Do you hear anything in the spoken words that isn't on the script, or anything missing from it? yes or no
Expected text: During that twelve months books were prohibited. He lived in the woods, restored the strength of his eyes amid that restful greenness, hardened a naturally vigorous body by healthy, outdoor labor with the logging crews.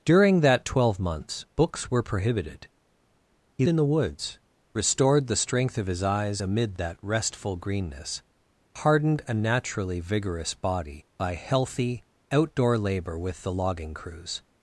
yes